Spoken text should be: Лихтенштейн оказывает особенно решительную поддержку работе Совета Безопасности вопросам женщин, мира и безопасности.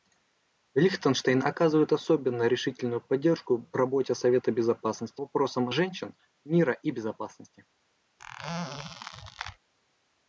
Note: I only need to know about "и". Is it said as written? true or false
true